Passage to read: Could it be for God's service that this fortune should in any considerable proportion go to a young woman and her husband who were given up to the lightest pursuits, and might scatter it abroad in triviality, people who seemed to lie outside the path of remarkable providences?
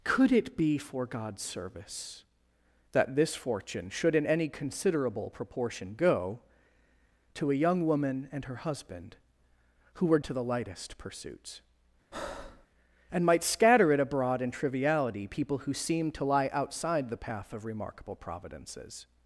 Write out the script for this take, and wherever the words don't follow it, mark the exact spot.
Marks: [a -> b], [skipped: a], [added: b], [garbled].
Could it be for God's service that this fortune should in any considerable proportion go to a young woman and her husband who were [skipped: given up] to the lightest pursuits, and might scatter it abroad in triviality, people who seemed to lie outside the path of remarkable providences?